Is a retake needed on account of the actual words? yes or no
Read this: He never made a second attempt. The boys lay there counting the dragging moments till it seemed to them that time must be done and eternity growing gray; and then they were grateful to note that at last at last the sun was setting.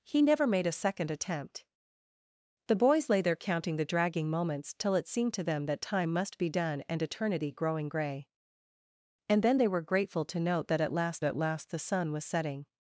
no